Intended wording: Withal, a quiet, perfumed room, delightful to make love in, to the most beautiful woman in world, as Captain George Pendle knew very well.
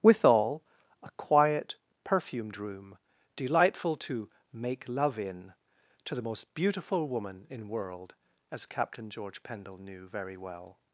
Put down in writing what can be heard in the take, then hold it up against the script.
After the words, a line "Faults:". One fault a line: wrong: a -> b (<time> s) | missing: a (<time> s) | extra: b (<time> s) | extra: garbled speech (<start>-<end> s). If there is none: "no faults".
Withal, a quiet, perfumed room, delightful to make love in, to the most beautiful woman in world, as Captain George Pendle knew very well.
Faults:
no faults